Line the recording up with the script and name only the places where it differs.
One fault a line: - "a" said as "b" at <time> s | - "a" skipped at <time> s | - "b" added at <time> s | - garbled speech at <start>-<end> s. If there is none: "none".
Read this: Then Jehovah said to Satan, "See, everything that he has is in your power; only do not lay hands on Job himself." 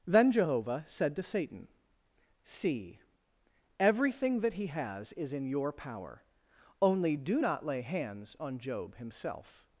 none